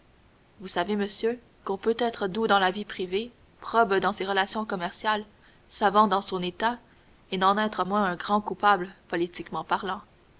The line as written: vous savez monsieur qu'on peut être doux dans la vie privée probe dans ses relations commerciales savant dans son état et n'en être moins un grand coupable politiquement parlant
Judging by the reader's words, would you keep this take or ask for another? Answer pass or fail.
pass